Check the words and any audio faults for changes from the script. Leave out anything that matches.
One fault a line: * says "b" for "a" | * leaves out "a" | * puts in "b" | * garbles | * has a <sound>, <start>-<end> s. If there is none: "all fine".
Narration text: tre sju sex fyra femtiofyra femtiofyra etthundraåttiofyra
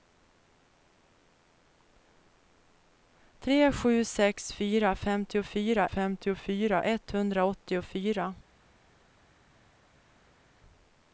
all fine